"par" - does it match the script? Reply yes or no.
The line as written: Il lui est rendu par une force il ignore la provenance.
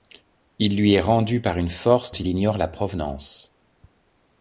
yes